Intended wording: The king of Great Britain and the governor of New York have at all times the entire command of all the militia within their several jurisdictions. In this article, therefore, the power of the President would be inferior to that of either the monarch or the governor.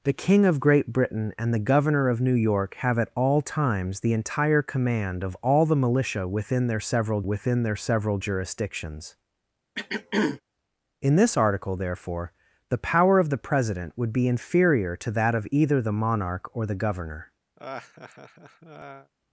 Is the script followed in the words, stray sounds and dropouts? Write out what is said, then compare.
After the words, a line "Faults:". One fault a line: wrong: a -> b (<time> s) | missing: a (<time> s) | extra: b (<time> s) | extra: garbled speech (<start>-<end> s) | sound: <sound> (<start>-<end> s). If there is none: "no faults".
The king of Great Britain and the governor of New York have at all times the entire command of all the militia within their several within their several jurisdictions. In this article, therefore, the power of the President would be inferior to that of either the monarch or the governor.
Faults:
extra: within their several (7.2 s)
sound: throat clearing (9.8-10.4 s)
sound: laugh (17.6-19.1 s)